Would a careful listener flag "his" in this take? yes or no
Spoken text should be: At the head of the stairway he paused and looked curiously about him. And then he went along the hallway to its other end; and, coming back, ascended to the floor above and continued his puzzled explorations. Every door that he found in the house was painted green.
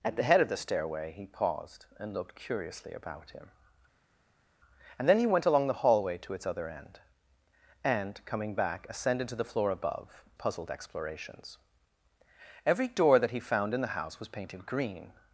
yes